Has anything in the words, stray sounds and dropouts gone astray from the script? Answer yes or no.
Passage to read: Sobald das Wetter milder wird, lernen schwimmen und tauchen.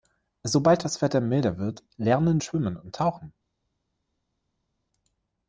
no